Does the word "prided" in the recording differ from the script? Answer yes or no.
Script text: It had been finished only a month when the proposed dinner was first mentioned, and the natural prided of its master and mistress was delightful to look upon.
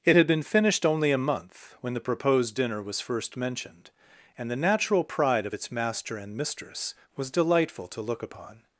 yes